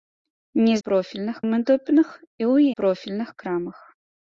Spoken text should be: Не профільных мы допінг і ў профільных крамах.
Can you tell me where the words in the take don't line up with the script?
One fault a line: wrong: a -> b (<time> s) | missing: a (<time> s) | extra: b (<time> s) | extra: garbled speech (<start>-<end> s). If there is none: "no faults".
no faults